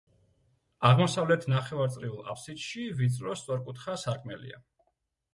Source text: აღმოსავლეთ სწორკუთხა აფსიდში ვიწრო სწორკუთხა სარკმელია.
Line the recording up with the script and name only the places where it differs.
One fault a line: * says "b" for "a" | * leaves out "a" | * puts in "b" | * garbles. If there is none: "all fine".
* says "ნახევარწრიულ" for "სწორკუთხა"